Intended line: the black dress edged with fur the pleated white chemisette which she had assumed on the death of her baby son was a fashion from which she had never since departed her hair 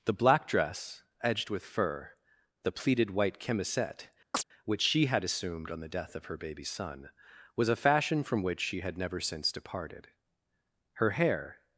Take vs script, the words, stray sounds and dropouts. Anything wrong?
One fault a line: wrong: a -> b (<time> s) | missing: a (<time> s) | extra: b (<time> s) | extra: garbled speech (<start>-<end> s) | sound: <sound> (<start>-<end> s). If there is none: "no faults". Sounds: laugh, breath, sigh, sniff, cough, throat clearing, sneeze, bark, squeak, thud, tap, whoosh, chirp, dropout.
sound: chirp (4.3-4.4 s)